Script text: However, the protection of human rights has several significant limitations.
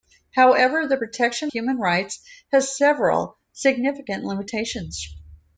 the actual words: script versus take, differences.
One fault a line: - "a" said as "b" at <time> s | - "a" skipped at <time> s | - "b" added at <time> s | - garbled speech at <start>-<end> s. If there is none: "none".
- "of" skipped at 1.5 s